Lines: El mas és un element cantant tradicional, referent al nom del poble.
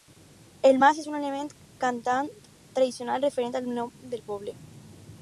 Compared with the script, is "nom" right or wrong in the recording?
right